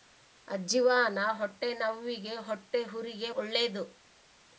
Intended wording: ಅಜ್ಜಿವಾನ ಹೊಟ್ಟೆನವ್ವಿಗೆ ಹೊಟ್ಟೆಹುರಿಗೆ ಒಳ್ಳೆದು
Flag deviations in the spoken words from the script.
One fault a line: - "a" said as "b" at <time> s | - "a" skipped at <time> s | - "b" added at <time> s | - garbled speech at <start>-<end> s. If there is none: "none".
none